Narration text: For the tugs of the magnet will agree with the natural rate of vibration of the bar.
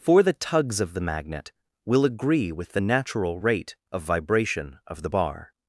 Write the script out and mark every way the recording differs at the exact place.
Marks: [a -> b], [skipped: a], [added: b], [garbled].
For the tugs of the magnet will agree with the natural rate of vibration of the bar.